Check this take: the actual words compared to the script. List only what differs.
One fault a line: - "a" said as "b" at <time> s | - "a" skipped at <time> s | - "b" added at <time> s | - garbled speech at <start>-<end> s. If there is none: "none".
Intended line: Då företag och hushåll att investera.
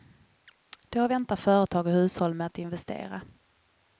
- "väntar" added at 1.1 s
- "med" added at 2.3 s